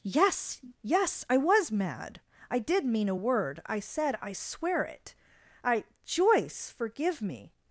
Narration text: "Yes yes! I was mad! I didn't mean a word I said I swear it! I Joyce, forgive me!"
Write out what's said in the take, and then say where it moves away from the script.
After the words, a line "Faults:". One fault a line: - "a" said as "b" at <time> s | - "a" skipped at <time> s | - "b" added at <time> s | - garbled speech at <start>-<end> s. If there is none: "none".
"Yes yes! I was mad! I did mean a word I said I swear it! I Joyce, forgive me!"
Faults:
- "didn't" said as "did" at 2.6 s